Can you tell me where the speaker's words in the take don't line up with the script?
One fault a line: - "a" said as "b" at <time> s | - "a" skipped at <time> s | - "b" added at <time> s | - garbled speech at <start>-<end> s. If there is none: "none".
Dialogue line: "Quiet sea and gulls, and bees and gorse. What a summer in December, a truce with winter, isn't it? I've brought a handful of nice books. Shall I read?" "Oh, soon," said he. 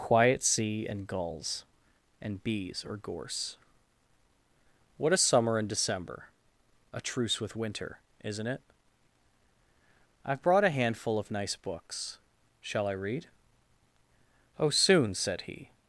- "and" said as "or" at 2.9 s